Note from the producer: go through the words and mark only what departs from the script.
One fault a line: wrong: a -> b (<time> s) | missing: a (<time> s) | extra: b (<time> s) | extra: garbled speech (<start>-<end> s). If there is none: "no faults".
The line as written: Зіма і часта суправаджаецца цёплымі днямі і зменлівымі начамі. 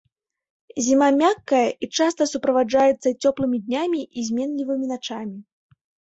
extra: мяккая (1.2 s)